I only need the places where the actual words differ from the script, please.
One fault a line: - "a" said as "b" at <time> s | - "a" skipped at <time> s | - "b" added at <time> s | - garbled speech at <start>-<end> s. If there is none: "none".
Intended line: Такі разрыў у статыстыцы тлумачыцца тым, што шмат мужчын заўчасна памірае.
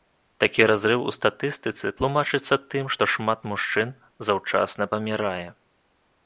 none